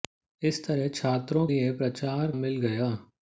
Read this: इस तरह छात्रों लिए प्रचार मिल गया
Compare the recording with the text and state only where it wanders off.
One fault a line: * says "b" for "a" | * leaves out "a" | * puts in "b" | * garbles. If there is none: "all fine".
all fine